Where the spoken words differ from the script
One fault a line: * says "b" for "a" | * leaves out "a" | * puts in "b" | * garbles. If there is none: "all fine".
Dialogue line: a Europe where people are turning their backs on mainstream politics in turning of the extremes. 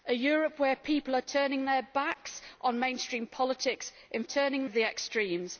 all fine